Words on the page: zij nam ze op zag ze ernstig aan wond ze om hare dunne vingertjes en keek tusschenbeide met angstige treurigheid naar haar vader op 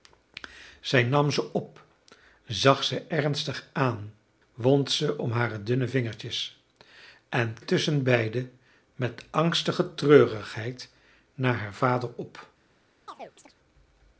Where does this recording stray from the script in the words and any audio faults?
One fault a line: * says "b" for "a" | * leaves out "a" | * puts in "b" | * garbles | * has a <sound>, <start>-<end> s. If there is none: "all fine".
* leaves out "keek"
* has a chirp, 13.1-13.5 s